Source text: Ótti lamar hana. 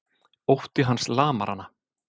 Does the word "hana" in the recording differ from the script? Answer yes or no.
no